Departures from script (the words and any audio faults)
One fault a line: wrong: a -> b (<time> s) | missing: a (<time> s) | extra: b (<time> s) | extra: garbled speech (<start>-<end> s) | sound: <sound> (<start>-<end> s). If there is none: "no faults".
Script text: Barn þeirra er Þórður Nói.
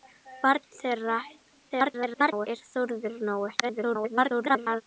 extra: garbled speech (1.7-2.5 s)
extra: garbled speech (3.6-4.8 s)